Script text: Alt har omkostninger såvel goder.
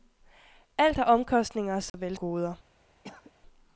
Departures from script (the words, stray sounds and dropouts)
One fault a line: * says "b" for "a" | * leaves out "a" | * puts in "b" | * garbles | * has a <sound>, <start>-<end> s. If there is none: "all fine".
* has a dropout, 1.9-1.9 s
* has a cough, 3.0-3.3 s